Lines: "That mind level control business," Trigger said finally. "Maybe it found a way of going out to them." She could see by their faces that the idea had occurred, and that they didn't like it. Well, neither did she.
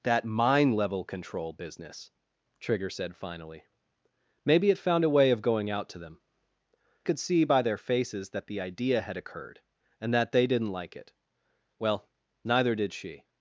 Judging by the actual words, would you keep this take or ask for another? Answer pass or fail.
fail